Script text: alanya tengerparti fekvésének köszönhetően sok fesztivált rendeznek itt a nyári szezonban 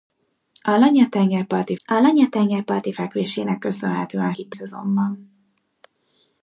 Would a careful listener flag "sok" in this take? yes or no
yes